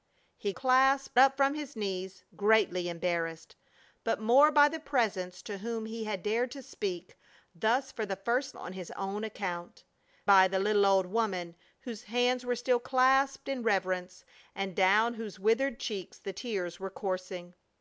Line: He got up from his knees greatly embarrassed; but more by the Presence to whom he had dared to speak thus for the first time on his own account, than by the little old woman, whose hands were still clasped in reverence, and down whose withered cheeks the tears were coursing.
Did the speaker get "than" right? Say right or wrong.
wrong